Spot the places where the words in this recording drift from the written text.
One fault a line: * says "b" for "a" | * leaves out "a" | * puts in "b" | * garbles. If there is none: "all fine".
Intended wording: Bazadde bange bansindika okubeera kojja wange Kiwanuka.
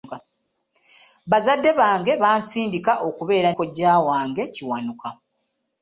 all fine